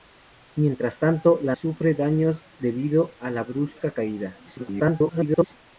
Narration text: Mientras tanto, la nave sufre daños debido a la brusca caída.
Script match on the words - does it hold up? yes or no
no